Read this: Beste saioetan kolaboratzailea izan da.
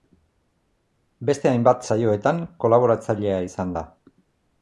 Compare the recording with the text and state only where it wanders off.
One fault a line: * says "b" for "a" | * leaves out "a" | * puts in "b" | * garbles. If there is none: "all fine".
* puts in "hainbat"